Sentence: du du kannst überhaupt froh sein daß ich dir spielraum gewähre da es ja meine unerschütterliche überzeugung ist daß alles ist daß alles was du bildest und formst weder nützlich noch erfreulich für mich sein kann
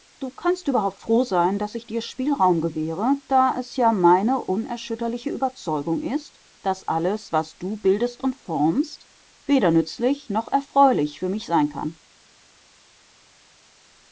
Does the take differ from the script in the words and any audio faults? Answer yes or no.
yes